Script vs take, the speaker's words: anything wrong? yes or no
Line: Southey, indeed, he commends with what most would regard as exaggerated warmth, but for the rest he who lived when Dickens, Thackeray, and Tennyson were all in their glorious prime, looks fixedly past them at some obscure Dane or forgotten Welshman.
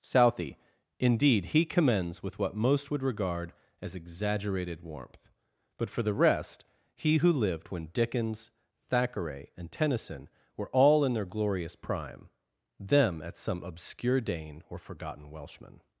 yes